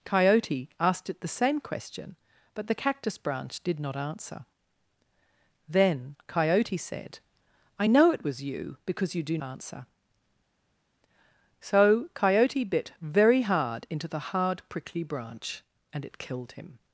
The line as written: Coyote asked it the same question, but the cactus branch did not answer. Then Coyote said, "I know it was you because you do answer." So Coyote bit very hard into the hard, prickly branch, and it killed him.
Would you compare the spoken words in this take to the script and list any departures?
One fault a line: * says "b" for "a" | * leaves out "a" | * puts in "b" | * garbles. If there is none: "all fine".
all fine